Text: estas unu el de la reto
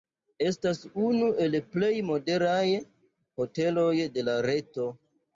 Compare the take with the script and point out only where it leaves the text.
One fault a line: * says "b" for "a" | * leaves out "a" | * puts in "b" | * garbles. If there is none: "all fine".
* puts in "plej modernaj hoteloj"